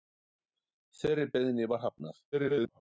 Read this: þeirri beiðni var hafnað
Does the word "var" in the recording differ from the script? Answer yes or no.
no